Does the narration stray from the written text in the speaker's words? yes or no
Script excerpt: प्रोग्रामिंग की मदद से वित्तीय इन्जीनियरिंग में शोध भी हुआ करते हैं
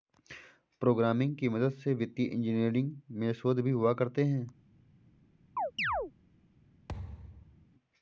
no